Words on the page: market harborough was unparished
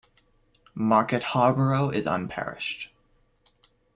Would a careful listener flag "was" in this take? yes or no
yes